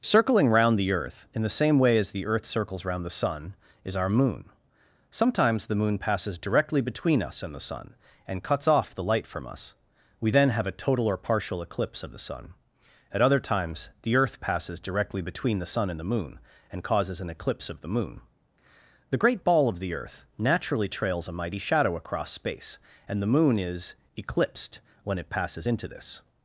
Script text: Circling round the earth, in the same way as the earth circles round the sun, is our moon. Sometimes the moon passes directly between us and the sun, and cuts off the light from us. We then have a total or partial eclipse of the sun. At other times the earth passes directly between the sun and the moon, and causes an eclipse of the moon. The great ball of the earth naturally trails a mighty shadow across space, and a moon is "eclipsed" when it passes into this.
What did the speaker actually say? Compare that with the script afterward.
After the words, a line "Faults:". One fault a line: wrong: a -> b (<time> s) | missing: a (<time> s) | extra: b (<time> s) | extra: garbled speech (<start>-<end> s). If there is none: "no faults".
Circling round the earth, in the same way as the earth circles round the sun, is our moon. Sometimes the moon passes directly between us and the sun, and cuts off the light from us. We then have a total or partial eclipse of the sun. At other times the earth passes directly between the sun and the moon, and causes an eclipse of the moon. The great ball of the earth naturally trails a mighty shadow across space, and the moon is "eclipsed" when it passes into this.
Faults:
wrong: a -> the (23.2 s)